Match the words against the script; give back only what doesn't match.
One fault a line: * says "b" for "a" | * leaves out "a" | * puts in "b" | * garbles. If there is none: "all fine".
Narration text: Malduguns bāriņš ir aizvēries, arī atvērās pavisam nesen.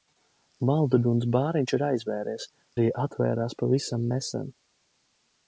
all fine